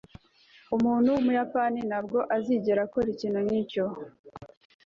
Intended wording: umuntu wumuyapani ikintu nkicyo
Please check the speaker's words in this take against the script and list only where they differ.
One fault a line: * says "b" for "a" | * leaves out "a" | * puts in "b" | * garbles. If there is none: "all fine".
* puts in "ntabwo azigera akora"